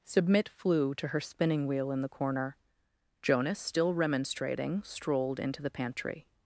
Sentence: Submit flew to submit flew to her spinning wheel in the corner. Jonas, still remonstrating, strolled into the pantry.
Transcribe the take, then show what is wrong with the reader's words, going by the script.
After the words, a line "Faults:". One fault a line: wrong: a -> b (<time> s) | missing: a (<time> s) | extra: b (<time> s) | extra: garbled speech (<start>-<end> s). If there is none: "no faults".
Submit flew to her spinning wheel in the corner. Jonas, still remonstrating, strolled into the pantry.
Faults:
missing: submit flew to (1.1 s)